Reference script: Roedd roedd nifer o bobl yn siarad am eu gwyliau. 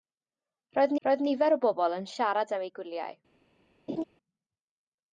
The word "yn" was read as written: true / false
true